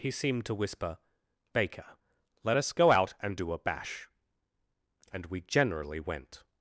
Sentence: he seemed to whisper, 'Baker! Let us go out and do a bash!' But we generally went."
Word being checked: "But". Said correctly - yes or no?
no